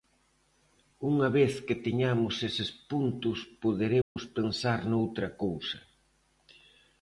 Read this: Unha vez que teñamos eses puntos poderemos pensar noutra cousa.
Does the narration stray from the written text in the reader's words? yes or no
no